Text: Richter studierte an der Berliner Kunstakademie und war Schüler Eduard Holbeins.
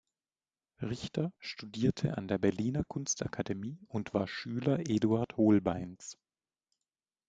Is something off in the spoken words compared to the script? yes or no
no